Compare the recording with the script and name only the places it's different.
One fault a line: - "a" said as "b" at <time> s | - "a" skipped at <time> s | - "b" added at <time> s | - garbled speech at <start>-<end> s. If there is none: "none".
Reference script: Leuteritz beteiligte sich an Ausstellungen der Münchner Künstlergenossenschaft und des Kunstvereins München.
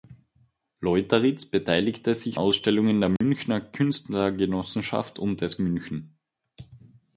- "an" skipped at 2.4 s
- "Kunstvereins" skipped at 5.6 s